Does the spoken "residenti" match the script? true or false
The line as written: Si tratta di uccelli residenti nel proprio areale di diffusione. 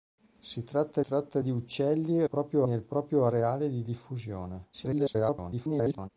false